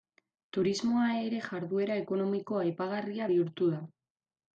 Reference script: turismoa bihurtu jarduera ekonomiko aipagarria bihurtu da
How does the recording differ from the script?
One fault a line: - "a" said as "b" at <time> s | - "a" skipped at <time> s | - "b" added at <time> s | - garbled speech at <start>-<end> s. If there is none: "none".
- "bihurtu" said as "ere" at 1.2 s